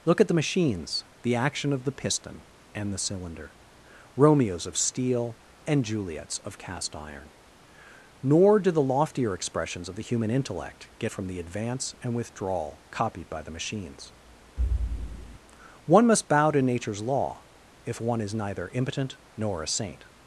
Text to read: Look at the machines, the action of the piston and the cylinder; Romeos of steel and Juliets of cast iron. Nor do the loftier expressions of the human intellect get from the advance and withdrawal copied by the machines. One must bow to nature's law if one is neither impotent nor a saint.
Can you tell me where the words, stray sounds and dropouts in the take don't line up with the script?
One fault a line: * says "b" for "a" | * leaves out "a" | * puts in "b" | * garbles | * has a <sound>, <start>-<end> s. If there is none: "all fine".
* has a thud, 14.6-15.4 s